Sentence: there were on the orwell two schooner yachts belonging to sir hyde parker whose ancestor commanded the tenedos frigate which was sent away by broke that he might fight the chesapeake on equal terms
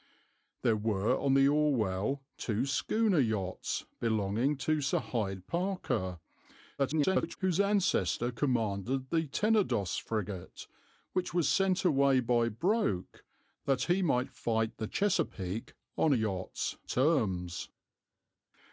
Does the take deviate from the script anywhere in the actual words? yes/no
yes